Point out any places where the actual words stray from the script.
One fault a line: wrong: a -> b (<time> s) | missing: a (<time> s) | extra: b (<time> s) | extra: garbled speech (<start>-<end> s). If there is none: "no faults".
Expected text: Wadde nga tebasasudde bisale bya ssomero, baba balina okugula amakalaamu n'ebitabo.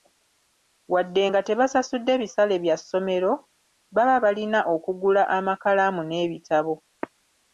no faults